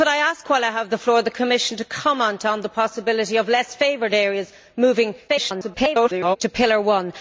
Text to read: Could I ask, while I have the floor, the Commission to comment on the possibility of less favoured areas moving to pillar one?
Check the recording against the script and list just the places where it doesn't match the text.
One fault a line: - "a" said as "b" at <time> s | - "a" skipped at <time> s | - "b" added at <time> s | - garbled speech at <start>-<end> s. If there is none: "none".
- garbled speech at 5.3-6.4 s